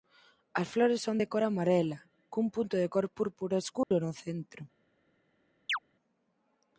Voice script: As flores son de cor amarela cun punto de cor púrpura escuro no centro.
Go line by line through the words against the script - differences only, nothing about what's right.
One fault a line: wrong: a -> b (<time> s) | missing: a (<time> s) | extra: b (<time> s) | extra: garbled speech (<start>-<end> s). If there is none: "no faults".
no faults